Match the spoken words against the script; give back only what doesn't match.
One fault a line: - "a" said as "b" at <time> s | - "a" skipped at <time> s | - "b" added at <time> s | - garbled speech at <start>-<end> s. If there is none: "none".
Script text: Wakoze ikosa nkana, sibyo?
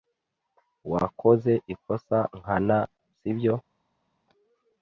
none